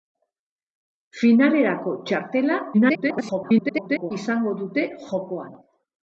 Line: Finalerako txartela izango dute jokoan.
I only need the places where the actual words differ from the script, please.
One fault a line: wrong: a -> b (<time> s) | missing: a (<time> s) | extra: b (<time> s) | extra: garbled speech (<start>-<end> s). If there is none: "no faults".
extra: garbled speech (2.7-4.1 s)